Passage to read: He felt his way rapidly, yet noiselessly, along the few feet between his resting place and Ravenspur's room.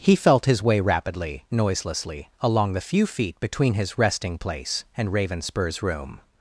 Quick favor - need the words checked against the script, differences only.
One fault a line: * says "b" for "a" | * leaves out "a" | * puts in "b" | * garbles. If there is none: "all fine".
* leaves out "yet"